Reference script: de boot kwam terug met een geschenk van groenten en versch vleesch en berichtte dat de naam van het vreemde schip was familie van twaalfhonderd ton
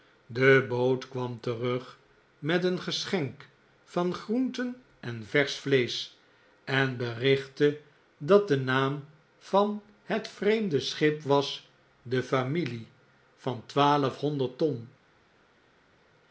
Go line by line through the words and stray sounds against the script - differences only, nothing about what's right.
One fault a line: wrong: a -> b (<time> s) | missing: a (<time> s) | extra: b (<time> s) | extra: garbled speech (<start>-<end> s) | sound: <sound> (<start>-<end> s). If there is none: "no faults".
extra: de (12.0 s)